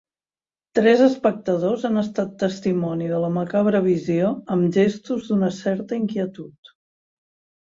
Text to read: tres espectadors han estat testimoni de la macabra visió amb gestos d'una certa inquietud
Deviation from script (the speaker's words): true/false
false